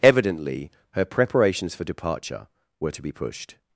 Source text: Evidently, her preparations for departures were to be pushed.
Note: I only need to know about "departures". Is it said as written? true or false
false